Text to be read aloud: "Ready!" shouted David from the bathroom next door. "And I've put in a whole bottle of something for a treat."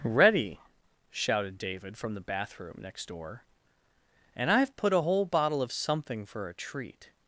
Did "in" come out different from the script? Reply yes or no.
yes